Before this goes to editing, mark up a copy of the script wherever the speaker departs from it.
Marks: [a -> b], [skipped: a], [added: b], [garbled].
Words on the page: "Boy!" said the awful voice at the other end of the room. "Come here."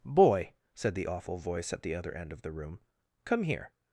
"Boy!" said the awful voice at the other end of the room. "Come here."